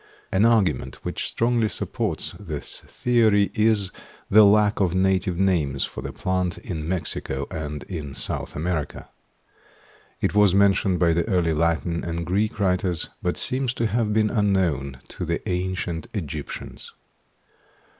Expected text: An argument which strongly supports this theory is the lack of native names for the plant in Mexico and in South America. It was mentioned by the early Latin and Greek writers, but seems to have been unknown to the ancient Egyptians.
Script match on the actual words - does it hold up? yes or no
yes